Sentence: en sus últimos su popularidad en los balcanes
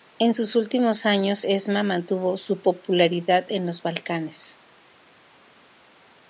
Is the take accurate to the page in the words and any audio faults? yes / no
no